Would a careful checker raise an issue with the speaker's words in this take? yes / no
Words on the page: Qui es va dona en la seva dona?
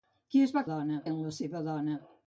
no